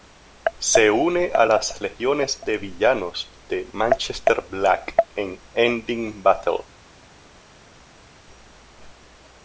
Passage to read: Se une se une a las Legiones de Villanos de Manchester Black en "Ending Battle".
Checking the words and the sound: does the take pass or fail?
fail